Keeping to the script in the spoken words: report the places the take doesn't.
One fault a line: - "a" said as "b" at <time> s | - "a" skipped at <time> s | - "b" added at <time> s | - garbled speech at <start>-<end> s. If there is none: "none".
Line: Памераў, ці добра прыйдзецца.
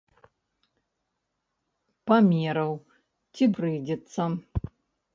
- "добра" skipped at 3.4 s